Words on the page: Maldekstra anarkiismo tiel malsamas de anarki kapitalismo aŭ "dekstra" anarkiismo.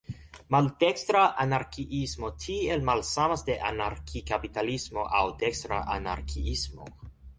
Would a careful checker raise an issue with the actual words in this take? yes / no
no